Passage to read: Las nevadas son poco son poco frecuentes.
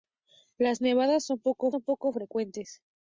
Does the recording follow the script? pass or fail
pass